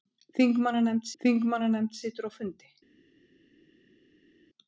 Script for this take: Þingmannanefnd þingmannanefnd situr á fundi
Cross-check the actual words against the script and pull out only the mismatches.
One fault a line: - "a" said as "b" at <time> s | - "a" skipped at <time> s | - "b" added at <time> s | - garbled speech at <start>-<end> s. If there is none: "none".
none